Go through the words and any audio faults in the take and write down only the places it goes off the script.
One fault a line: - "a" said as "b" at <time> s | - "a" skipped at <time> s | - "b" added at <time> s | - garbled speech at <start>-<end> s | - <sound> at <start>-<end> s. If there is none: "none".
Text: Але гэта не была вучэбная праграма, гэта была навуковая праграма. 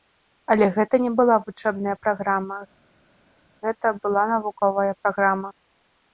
none